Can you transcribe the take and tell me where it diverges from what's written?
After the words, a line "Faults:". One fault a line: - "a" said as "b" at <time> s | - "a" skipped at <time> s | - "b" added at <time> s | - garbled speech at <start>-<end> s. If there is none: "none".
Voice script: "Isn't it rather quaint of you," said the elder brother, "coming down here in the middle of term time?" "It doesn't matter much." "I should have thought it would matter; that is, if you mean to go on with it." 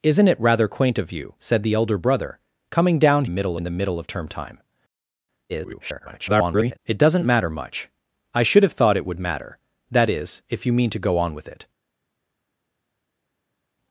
"Isn't it rather quaint of you," said the elder brother, "coming down middle in the middle of term time?" [garbled] "It doesn't matter much." "I should have thought it would matter; that is, if you mean to go on with it."
Faults:
- "here" said as "middle" at 3.3 s
- garbled speech at 5.5-6.8 s